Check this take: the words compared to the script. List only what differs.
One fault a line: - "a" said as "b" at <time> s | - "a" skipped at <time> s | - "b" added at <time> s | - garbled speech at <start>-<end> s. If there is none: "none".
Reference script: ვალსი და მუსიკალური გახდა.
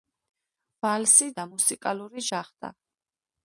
none